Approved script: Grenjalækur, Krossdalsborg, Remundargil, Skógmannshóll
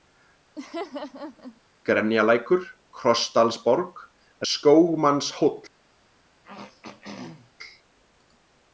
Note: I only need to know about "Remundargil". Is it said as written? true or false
false